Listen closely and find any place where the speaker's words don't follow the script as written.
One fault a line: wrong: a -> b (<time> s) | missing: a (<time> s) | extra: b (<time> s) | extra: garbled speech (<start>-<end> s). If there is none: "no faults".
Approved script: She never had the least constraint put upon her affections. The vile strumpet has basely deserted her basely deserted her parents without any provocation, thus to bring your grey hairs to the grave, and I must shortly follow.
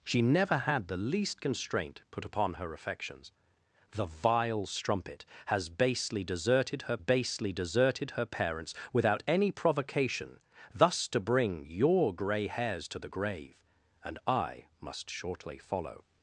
no faults